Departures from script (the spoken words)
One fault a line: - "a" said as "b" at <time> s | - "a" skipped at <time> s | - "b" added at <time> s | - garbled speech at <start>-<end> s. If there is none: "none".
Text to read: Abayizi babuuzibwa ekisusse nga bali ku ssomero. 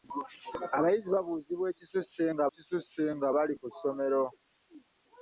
- "ekisusse nga" added at 2.5 s